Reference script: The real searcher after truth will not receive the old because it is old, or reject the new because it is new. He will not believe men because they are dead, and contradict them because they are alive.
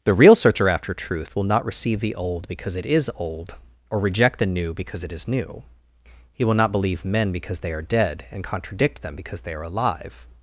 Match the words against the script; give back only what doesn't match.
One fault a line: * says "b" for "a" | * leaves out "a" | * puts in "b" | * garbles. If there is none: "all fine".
all fine